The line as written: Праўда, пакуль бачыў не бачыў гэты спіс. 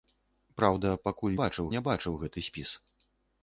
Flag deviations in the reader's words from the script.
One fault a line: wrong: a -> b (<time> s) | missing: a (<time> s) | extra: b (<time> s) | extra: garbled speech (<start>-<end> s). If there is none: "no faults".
no faults